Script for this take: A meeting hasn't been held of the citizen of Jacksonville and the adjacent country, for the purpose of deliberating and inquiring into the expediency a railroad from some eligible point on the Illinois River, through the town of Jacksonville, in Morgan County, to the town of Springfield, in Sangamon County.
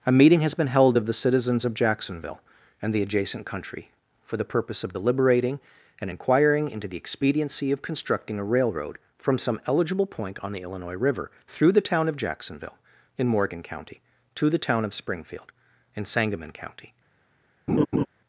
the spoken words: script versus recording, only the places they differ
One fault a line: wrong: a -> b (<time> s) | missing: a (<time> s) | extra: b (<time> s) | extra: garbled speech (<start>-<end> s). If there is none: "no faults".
wrong: hasn't -> has (0.4 s)
wrong: citizen -> citizens (1.1 s)
extra: of constructing (7.7 s)